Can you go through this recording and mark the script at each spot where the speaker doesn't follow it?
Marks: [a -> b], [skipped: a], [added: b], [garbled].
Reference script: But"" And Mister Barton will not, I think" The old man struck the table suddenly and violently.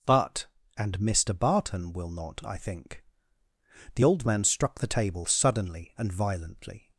But"" And Mister Barton will not, I think" The old man struck the table suddenly and violently.